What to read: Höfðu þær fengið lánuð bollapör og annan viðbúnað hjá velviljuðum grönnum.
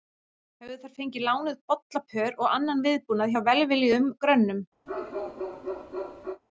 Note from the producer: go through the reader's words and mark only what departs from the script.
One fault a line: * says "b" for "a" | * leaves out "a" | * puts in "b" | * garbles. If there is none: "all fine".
all fine